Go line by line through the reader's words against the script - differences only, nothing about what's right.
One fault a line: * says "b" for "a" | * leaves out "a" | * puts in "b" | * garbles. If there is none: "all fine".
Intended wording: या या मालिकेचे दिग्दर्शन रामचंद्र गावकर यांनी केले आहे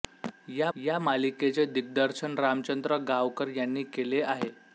all fine